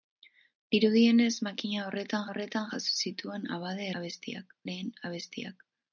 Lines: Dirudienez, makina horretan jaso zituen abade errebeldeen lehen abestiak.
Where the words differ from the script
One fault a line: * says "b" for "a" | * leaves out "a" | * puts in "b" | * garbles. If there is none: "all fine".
* puts in "horretan"
* says "abestiak" for "errebeldeen"